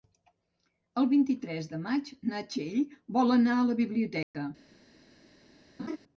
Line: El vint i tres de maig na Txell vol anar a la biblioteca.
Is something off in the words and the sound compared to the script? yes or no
yes